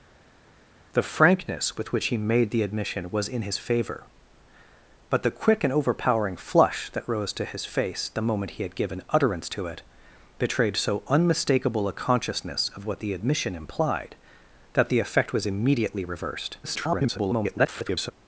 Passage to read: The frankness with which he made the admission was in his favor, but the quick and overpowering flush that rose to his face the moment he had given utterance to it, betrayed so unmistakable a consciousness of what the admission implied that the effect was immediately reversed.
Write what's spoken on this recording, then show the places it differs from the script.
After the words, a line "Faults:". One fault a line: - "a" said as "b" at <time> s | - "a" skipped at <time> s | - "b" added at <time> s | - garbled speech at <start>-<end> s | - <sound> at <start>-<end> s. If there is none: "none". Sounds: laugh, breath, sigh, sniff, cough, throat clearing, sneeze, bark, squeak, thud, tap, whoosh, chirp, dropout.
The frankness with which he made the admission was in his favor, but the quick and overpowering flush that rose to his face the moment he had given utterance to it, betrayed so unmistakable a consciousness of what the admission implied that the effect was immediately reversed. [garbled]
Faults:
- garbled speech at 16.6-18.1 s